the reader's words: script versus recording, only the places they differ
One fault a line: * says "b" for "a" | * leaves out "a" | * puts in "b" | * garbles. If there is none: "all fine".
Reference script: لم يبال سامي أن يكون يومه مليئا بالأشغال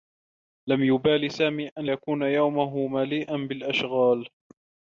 all fine